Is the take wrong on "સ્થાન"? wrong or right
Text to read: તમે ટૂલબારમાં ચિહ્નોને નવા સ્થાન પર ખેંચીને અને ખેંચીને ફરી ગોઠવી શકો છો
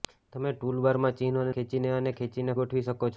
wrong